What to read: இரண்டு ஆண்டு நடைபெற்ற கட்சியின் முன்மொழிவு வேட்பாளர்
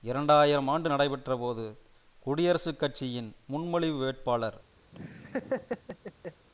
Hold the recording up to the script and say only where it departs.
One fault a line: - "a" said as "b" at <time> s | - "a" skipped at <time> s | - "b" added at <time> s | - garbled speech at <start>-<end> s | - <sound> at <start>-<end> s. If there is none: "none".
- "ஆயிரம்" added at 0.3 s
- "போது குடியரசுக்" added at 1.4 s
- laugh at 4.9-6.5 s